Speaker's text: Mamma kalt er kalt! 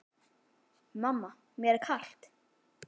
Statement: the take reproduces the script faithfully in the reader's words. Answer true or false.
false